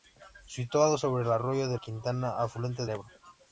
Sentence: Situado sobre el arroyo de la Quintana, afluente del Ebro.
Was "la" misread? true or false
true